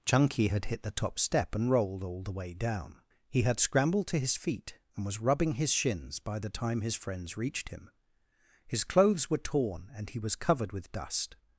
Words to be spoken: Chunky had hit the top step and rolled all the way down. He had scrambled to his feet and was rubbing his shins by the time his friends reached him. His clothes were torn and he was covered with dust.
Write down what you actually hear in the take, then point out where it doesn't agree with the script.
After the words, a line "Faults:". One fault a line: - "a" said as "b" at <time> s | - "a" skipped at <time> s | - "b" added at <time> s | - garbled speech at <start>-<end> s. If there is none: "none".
Chunky had hit the top step and rolled all the way down. He had scrambled to his feet and was rubbing his shins by the time his friends reached him. His clothes were torn and he was covered with dust.
Faults:
none